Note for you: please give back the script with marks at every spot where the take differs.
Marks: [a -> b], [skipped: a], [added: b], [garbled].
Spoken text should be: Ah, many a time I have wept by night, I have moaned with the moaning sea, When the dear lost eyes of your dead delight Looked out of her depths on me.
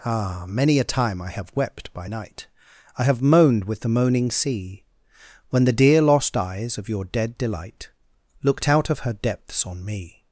Ah, many a time I have wept by night, I have moaned with the moaning sea, When the dear lost eyes of your dead delight Looked out of her depths on me.